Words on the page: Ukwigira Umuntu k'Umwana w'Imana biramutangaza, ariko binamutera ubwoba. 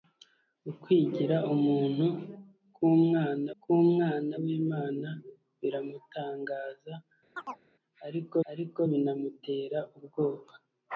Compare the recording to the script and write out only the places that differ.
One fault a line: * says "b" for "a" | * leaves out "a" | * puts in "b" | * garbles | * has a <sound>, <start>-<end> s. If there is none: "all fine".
* puts in "k'Umwana"
* has a chirp, 7.4-7.7 s
* puts in "ariko"